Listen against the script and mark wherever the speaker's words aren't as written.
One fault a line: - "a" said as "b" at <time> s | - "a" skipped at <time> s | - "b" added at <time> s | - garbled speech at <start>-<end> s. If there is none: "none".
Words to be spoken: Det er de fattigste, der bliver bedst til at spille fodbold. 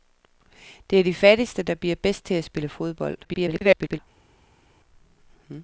- garbled speech at 3.2-4.0 s